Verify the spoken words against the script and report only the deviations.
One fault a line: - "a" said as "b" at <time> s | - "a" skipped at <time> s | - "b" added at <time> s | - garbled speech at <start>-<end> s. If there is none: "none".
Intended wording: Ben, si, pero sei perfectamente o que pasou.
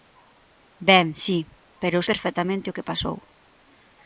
- "sei" skipped at 2.1 s